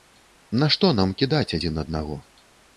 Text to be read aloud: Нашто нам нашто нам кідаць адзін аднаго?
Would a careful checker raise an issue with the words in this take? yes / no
yes